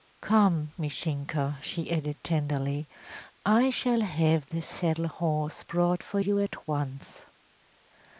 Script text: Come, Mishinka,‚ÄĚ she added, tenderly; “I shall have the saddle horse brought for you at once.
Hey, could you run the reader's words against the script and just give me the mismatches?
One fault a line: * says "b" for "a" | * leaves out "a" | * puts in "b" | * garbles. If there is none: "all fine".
all fine